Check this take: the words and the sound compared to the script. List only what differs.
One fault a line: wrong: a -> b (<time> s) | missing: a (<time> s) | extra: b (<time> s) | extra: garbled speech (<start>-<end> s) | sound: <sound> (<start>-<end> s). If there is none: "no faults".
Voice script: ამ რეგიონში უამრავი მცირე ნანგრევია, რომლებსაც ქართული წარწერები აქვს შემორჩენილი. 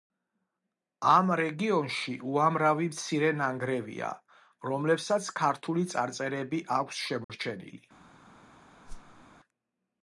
sound: dropout (7.2-7.3 s)
sound: whoosh (8.9-9.3 s)